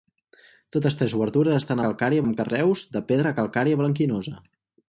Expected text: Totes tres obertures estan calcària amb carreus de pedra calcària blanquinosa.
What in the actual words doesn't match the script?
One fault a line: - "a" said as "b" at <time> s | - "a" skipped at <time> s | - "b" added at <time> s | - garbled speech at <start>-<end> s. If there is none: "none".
none